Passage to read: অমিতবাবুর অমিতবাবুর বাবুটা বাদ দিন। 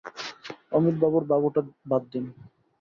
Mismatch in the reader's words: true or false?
true